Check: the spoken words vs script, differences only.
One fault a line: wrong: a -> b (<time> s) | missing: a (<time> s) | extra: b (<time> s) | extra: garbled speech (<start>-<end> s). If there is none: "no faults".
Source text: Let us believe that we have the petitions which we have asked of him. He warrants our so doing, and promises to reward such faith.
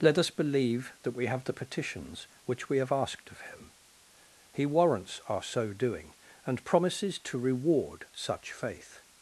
no faults